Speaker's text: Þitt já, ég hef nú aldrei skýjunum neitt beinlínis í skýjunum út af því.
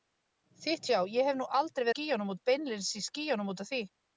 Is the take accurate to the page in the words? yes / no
yes